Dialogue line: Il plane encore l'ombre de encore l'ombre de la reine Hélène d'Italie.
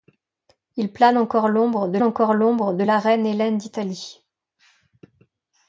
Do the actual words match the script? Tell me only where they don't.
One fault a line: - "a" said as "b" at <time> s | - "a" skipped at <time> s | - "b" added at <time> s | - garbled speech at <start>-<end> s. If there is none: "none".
none